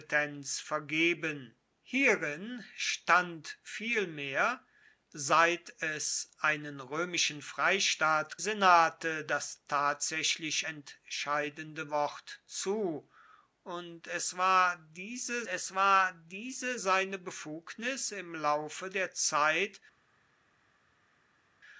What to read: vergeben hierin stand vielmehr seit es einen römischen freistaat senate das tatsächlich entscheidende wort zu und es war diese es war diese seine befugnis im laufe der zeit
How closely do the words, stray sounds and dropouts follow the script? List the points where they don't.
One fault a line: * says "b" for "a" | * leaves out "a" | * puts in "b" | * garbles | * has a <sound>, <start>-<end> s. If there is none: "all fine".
all fine